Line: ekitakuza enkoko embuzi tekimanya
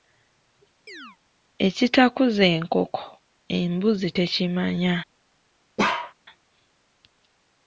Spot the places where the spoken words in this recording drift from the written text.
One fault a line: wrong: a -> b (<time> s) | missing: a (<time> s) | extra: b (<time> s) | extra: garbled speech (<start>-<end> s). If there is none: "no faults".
no faults